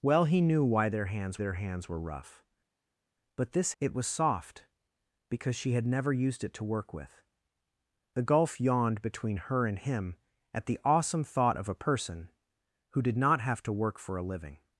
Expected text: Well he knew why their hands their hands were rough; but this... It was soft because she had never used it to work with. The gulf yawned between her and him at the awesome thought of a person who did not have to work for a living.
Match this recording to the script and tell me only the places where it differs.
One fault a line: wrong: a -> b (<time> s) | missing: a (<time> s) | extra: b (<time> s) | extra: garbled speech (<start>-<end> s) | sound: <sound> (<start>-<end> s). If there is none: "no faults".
no faults